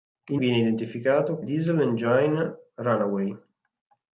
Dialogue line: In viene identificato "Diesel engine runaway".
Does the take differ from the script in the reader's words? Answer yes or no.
no